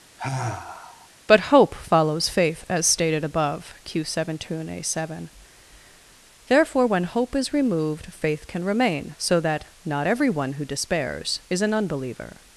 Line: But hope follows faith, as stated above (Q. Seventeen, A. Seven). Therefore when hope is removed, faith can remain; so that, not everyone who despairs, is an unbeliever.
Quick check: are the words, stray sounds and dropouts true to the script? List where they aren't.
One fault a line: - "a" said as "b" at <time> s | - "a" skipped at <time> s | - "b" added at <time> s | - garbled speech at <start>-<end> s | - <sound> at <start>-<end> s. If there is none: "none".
- sigh at 0.2-1.1 s